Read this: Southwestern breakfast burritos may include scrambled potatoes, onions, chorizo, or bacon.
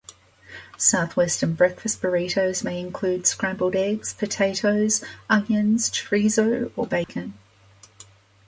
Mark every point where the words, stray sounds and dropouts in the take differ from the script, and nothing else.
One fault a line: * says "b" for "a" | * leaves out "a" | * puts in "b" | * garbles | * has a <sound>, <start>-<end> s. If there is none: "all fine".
* puts in "eggs"
* has a dropout, 7.0-7.1 s